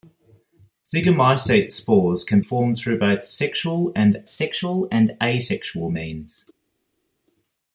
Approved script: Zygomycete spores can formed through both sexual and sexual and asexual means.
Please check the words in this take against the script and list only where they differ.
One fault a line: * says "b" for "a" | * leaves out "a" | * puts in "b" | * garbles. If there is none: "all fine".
all fine